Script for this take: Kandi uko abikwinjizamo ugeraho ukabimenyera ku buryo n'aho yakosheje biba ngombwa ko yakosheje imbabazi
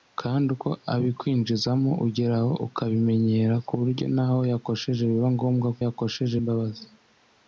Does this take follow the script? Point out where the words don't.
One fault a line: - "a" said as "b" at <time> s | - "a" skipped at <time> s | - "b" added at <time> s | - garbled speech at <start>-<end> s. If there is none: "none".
none